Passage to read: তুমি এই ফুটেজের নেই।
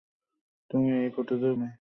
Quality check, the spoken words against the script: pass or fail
pass